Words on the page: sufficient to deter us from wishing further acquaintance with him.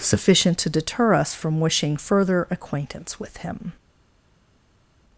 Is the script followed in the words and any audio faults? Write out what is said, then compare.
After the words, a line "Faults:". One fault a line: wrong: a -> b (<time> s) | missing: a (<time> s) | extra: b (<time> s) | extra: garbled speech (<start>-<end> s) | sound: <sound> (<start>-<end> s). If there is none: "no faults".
sufficient to deter us from wishing further acquaintance with him.
Faults:
no faults